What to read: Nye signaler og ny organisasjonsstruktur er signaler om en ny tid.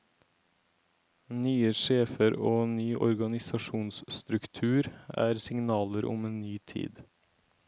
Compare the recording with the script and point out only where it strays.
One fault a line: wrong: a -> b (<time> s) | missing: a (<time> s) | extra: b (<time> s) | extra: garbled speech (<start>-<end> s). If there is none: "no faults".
wrong: signaler -> sjefer (1.8 s)